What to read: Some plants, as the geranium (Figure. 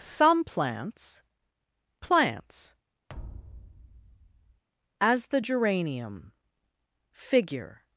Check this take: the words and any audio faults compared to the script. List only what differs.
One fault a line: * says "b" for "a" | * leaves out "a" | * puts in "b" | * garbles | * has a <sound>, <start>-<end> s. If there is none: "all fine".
* puts in "plants"
* has a thud, 3.1-4.6 s